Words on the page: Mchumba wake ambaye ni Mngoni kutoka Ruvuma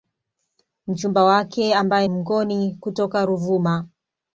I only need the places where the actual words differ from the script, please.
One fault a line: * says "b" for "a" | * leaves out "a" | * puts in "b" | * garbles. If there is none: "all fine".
* leaves out "ni"